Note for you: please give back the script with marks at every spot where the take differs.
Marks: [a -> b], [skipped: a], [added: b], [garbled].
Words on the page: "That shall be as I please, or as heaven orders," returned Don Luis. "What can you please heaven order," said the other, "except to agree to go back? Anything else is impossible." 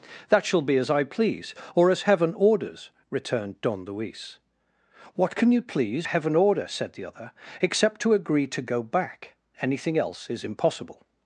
"That shall be as I please, or as heaven orders," returned Don Luis. "What can you please heaven order," said the other, "except to agree to go back? Anything else is impossible."